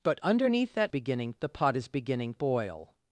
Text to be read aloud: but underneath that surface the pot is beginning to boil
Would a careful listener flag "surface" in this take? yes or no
yes